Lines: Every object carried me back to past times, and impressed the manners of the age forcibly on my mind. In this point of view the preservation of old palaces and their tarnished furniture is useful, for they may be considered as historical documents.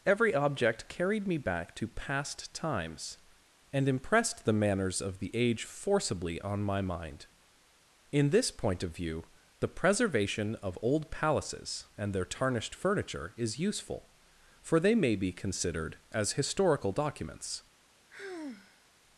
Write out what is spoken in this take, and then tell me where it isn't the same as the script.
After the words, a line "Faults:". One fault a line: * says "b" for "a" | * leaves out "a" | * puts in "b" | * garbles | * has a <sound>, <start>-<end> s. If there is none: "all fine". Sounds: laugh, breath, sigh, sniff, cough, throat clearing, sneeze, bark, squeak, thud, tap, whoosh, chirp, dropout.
Every object carried me back to past times, and impressed the manners of the age forcibly on my mind. In this point of view the preservation of old palaces and their tarnished furniture is useful, for they may be considered as historical documents.
Faults:
* has a sigh, 18.1-18.9 s